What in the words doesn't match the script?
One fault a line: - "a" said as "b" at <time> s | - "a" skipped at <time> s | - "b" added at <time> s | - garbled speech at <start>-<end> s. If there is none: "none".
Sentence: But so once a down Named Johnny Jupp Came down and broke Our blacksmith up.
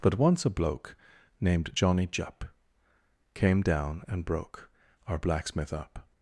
- "so" skipped at 0.2 s
- "down" said as "bloke" at 0.5 s